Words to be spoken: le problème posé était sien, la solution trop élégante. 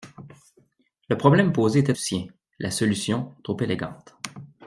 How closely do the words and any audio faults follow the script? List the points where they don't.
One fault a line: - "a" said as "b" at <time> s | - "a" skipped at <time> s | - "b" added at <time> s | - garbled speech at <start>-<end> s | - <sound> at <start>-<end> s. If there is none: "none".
none